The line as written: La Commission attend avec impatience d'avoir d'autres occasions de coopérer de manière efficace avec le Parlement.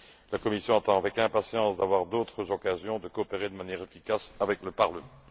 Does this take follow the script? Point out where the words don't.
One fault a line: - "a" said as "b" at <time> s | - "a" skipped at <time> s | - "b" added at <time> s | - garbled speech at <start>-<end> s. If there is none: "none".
none